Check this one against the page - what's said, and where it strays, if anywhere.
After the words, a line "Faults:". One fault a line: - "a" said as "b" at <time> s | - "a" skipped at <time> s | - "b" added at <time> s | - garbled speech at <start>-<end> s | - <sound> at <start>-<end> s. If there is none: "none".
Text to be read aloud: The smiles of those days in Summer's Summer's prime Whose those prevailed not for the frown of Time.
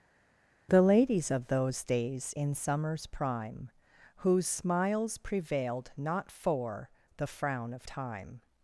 The ladies of those days in Summer's prime Whose smiles prevailed not for the frown of Time.
Faults:
- "smiles" said as "ladies" at 0.8 s
- "Summer's" skipped at 3.1 s
- "those" said as "smiles" at 4.5 s